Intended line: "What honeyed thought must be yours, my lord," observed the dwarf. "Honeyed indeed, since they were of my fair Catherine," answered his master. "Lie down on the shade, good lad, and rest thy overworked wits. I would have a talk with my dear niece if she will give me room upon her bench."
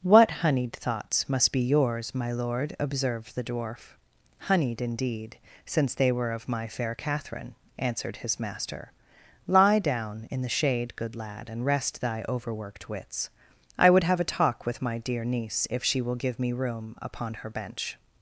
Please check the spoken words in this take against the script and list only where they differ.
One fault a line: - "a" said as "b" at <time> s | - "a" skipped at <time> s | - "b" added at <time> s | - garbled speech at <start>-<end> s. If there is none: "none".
- "thought" said as "thoughts" at 0.7 s
- "on" said as "in" at 10.3 s